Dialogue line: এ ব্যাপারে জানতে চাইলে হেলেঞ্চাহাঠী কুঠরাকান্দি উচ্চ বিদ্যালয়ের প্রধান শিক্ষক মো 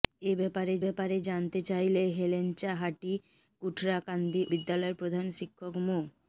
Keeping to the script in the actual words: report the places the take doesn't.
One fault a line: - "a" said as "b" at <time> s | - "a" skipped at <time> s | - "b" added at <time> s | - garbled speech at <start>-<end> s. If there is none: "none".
- "ব্যাপারে" added at 0.8 s
- "উচ্চ" skipped at 4.4 s